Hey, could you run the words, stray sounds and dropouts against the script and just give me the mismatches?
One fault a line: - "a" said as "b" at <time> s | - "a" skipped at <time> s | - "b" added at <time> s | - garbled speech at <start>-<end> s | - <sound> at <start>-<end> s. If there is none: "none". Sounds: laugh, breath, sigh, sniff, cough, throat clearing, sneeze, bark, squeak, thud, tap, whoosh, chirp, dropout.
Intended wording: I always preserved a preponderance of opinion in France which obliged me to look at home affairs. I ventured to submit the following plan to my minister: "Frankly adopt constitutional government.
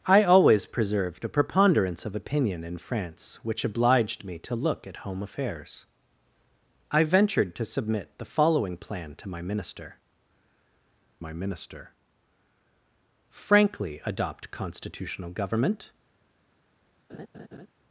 - "my minister" added at 11.2 s
- laugh at 17.1-17.7 s